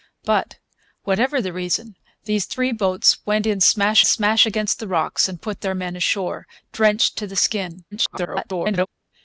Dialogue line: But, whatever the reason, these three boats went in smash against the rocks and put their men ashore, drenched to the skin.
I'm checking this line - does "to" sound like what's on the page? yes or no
yes